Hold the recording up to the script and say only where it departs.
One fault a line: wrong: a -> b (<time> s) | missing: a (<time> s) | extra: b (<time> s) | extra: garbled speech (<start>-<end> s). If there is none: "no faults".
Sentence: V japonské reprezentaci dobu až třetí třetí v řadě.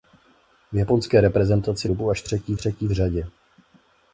no faults